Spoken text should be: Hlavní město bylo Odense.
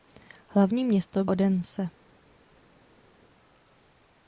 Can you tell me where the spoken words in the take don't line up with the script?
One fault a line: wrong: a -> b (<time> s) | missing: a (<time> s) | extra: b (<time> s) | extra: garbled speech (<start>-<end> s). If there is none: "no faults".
missing: bylo (1.2 s)